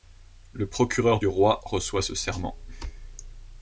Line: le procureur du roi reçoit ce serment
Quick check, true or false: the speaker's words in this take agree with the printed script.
true